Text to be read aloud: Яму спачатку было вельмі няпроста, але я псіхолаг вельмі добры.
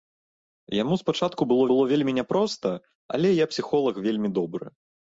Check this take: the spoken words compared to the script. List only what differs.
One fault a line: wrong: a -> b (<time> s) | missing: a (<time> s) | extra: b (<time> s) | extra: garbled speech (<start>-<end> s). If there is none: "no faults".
extra: было (1.7 s)